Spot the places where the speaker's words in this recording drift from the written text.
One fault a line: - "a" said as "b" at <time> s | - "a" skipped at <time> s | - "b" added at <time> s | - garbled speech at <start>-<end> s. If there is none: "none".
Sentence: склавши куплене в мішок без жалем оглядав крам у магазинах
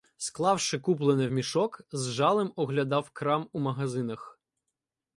- "без" said as "з" at 1.9 s